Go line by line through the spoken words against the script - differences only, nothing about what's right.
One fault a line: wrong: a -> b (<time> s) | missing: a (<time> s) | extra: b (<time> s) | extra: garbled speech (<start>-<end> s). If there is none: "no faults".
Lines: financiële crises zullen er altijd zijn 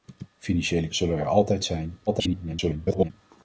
missing: crises (0.9 s)
extra: garbled speech (2.1-3.1 s)